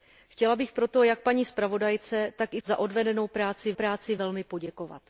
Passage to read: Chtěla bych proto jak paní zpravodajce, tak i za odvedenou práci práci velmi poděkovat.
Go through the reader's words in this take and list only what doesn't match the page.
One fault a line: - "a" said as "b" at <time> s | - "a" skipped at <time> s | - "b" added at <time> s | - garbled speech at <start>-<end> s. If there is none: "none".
none